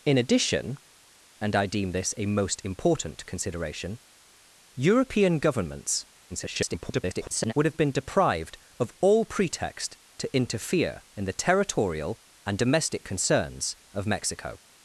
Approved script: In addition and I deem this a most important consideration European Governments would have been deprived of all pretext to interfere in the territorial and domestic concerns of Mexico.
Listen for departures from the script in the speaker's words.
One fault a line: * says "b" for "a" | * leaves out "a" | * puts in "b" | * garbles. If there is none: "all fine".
* garbles